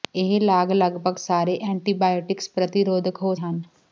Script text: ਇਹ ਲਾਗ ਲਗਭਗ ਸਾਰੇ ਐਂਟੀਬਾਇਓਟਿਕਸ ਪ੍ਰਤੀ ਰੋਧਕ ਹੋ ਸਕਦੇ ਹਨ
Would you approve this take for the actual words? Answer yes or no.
no